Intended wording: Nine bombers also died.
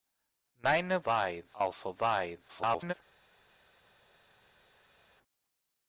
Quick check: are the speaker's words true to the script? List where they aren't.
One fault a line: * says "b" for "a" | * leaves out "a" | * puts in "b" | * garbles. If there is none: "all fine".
* says "died" for "bombers"
* garbles